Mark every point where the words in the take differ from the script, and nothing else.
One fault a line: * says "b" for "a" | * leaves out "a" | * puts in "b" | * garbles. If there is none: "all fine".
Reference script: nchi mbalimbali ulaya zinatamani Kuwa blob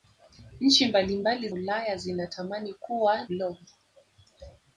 all fine